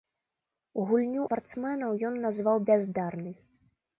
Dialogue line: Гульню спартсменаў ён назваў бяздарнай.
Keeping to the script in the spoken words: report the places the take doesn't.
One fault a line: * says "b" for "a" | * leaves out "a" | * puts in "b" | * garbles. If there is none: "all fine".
all fine